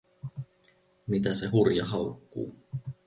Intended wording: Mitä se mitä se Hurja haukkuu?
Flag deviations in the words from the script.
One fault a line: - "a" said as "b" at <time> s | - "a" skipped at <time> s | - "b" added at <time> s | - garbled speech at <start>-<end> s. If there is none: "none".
- "mitä se" skipped at 1.5 s